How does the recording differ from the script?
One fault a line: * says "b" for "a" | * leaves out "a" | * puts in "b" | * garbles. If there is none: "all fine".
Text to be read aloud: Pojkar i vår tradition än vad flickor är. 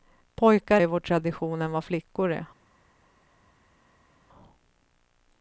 all fine